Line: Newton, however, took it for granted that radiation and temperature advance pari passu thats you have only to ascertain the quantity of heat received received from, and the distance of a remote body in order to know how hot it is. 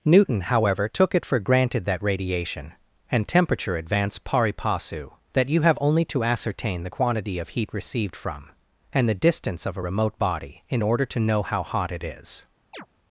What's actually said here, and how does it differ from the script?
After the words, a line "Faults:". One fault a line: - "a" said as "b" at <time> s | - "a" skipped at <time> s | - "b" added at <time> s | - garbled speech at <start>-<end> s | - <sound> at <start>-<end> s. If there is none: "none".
Newton, however, took it for granted that radiation and temperature advance pari passu that you have only to ascertain the quantity of heat received from, and the distance of a remote body in order to know how hot it is.
Faults:
- "thats" said as "that" at 5.3 s
- "received" skipped at 8.1 s
- chirp at 12.7-12.9 s